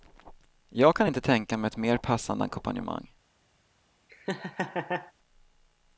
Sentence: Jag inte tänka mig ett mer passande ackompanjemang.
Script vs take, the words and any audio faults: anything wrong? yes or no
yes